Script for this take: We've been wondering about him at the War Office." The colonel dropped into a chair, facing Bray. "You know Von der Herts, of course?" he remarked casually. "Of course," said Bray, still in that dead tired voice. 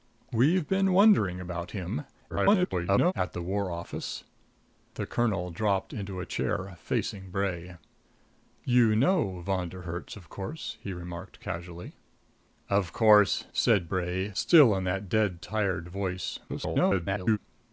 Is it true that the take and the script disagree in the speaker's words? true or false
true